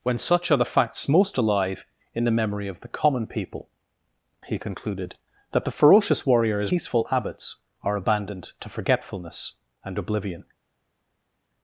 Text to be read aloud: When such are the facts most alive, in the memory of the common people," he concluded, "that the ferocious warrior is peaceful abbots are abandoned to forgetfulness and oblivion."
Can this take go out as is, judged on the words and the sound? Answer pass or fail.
pass